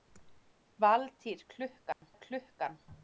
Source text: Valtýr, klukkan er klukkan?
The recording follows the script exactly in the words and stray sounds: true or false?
false